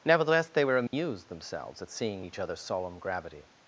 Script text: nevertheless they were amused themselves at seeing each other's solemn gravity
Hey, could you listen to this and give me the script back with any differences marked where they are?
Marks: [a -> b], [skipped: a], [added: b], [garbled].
nevertheless they were amused themselves at seeing each other's solemn gravity